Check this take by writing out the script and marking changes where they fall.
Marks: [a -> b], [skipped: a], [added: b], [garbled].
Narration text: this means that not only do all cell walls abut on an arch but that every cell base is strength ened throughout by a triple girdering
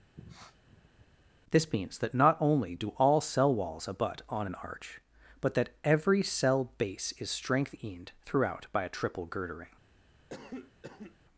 this means that not only do all cell walls abut on an arch but that every cell base is strength ened throughout by a triple girdering